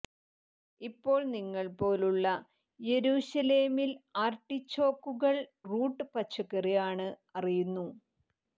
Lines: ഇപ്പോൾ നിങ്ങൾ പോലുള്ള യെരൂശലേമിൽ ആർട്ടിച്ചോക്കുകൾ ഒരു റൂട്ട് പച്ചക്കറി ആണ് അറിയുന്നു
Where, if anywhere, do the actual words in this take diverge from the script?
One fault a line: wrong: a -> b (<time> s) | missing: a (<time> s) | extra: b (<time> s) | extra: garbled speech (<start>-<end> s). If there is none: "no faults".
missing: ഒരു (5.4 s)